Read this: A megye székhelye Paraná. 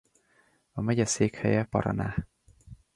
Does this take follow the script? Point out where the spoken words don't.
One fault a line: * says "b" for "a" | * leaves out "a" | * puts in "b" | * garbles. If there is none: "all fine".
all fine